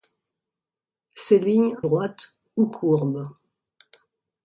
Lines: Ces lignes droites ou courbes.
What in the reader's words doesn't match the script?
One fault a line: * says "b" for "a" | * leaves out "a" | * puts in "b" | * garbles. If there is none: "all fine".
all fine